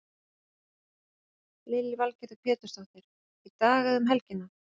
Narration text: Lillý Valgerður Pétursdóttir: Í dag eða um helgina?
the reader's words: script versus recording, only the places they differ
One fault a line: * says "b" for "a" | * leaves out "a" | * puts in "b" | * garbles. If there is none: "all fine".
all fine